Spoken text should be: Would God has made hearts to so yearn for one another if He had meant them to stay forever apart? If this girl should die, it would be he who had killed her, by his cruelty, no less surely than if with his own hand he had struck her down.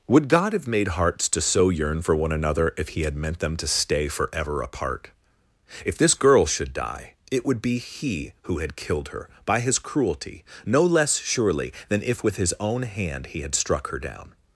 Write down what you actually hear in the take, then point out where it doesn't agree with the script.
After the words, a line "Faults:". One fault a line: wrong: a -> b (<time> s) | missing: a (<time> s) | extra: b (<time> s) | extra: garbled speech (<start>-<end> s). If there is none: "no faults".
Would God have made hearts to so yearn for one another if He had meant them to stay forever apart? If this girl should die, it would be he who had killed her, by his cruelty, no less surely than if with his own hand he had struck her down.
Faults:
wrong: has -> have (0.5 s)